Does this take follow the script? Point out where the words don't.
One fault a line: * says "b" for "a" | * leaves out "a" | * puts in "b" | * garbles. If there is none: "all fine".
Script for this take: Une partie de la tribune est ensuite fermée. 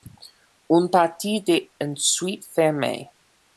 * leaves out "la tribune est"